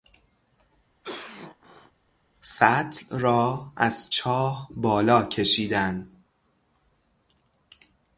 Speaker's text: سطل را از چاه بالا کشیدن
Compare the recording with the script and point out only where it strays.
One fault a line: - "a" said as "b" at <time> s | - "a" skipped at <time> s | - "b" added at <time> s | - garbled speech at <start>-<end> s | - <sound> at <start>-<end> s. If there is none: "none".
- cough at 1.0-1.9 s